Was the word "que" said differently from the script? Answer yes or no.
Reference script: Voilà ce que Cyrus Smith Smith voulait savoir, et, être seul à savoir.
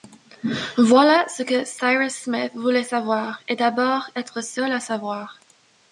no